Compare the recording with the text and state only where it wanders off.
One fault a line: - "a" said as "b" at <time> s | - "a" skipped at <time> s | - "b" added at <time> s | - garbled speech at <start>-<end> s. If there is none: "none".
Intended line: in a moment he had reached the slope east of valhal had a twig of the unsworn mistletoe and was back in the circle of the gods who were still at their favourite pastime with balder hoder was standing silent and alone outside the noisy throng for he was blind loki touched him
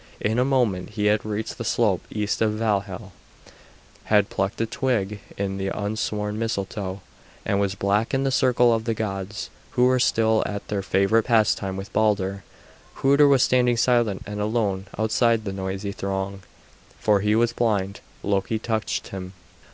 - "plucked" added at 4.3 s